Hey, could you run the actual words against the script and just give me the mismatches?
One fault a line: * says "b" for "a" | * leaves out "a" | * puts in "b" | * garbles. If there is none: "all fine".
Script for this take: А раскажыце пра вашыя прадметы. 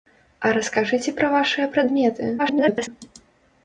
* garbles